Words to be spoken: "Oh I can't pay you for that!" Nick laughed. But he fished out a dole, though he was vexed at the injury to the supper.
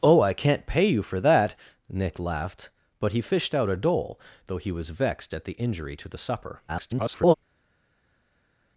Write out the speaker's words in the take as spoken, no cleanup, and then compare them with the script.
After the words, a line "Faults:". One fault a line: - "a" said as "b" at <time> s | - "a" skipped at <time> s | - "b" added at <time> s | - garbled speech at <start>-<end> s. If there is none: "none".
"Oh I can't pay you for that!" Nick laughed. But he fished out a dole, though he was vexed at the injury to the supper. [garbled]
Faults:
- garbled speech at 6.7-7.3 s